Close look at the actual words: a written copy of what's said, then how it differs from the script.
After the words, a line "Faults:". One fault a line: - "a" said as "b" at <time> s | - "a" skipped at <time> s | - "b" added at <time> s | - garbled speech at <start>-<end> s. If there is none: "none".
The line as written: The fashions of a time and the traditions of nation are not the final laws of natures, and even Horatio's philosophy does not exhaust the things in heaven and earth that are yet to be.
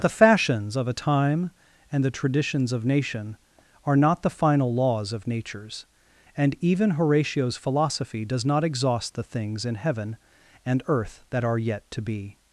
The fashions of a time and the traditions of nation are not the final laws of natures, and even Horatio's philosophy does not exhaust the things in heaven and earth that are yet to be.
Faults:
none